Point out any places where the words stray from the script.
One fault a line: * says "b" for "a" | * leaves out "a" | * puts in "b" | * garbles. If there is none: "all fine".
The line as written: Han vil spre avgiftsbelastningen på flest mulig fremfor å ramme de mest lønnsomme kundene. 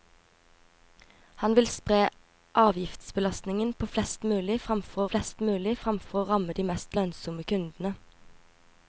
* puts in "flest mulig fremfor"